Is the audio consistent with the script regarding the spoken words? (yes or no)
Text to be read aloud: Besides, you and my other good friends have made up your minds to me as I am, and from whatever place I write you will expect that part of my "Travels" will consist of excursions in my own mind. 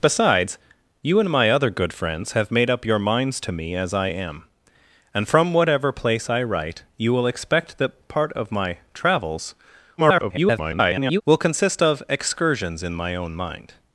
no